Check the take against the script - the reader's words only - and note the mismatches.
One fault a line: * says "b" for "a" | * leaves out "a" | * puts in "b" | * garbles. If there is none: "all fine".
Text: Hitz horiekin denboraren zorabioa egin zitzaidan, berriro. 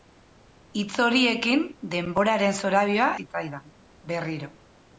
* leaves out "egin"